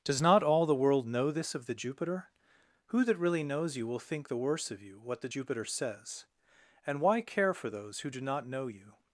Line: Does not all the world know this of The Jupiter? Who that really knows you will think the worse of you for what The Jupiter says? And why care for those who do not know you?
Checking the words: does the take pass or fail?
fail